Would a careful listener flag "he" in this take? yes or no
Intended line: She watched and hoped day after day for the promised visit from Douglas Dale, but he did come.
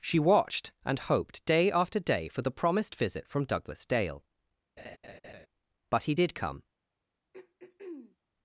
no